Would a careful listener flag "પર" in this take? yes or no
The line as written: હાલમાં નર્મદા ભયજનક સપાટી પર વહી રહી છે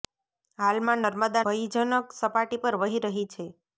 no